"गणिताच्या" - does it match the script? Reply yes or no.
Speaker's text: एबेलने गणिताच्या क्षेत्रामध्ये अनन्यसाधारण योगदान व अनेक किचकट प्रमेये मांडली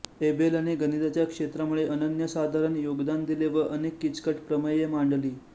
yes